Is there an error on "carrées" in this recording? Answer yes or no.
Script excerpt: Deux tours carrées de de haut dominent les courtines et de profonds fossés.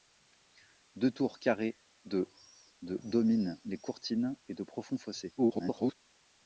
no